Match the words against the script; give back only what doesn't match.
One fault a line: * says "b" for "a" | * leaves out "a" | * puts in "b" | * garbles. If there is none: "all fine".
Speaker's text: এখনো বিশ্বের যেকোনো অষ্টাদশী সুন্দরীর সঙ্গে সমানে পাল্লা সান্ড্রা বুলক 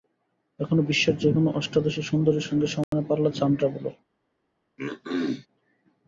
all fine